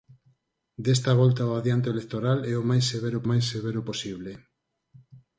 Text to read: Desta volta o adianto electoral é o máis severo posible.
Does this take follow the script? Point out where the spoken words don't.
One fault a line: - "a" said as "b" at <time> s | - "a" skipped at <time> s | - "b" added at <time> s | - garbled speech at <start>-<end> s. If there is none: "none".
- "máis severo" added at 3.3 s